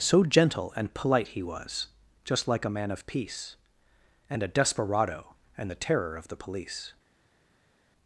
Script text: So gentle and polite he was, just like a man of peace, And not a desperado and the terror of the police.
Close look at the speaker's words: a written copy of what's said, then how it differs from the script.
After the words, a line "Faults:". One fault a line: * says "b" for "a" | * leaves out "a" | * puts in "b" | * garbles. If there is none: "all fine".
So gentle and polite he was, just like a man of peace, And a desperado and the terror of the police.
Faults:
* leaves out "not"